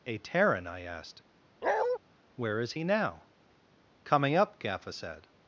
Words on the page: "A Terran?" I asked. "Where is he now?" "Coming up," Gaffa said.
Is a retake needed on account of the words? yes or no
no